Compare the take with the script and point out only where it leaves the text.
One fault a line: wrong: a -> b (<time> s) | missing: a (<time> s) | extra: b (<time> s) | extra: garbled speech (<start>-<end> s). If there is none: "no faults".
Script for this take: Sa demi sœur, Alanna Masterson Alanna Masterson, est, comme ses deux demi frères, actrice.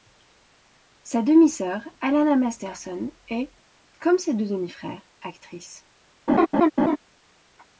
missing: Alanna Masterson (3.1 s)